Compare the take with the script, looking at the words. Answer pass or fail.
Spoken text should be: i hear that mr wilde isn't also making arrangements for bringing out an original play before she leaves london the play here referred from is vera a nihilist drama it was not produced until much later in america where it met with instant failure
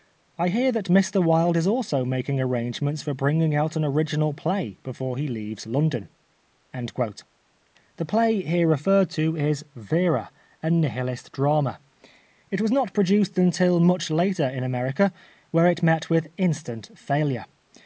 fail